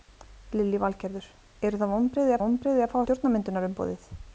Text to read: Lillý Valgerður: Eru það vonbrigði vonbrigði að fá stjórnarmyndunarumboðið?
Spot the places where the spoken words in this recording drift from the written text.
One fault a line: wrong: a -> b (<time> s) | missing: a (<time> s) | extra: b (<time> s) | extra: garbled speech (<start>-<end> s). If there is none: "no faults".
no faults